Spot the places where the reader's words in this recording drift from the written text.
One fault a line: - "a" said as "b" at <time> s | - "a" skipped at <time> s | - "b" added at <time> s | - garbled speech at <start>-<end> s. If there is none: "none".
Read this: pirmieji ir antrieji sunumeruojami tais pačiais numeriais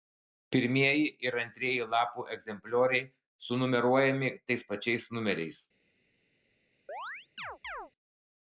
- "lapų egzemplioriai" added at 1.9 s